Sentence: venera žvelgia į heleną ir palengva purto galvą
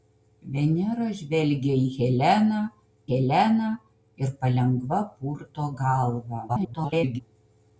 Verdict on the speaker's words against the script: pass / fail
fail